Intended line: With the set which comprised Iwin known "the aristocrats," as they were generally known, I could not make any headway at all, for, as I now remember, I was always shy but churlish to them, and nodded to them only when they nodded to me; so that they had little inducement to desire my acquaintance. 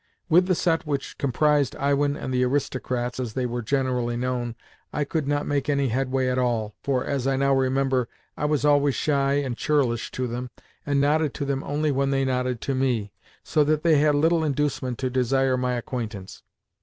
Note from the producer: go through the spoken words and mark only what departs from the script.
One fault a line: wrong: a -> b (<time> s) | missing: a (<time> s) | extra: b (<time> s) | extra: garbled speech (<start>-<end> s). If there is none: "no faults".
wrong: known -> and (2.2 s)
wrong: but -> and (9.4 s)